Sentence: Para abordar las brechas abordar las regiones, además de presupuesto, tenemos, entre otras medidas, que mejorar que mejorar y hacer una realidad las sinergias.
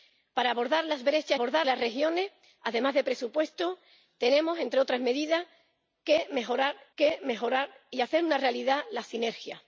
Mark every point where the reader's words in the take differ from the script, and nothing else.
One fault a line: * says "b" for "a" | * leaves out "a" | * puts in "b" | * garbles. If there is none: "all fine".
all fine